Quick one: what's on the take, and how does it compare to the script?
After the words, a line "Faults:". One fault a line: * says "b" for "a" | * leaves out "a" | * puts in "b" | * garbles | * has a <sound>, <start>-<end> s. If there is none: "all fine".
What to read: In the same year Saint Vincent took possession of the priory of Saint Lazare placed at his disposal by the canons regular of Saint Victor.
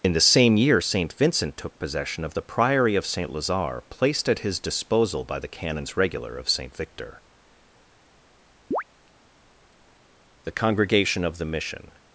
In the same year Saint Vincent took possession of the priory of Saint Lazare placed at his disposal by the canons regular of Saint Victor. The Congregation of the Mission
Faults:
* has a chirp, 8.7-8.8 s
* puts in "The Congregation of the Mission"